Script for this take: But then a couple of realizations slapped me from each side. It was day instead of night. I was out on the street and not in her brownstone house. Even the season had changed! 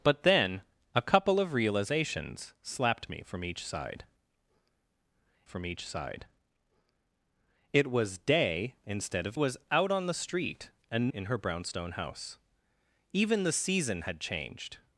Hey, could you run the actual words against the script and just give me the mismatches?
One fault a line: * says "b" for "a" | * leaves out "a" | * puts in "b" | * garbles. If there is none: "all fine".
* puts in "from each side"
* leaves out "night I"
* leaves out "not"